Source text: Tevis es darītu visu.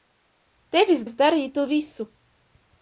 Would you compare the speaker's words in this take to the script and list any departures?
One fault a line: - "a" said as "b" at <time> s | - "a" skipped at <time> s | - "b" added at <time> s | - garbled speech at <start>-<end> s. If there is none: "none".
none